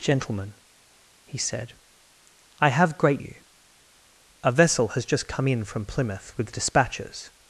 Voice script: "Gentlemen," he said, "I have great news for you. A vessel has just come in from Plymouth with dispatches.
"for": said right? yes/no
no